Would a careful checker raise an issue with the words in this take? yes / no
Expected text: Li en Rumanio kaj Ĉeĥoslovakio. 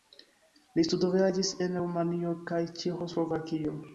yes